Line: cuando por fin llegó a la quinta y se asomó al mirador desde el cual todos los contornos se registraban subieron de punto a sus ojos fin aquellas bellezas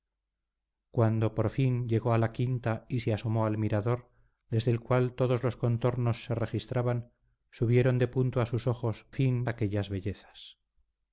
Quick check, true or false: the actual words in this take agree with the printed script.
true